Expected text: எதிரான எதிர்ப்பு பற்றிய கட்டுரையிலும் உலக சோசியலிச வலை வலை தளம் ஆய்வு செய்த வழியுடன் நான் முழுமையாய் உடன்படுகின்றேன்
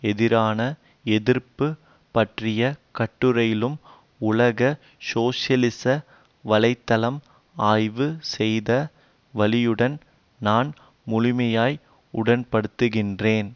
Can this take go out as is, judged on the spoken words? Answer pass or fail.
fail